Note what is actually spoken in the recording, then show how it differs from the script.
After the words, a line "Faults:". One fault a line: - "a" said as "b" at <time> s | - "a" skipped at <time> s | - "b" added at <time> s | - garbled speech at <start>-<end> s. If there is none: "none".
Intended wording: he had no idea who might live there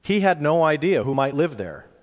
he had no idea who might live there
Faults:
none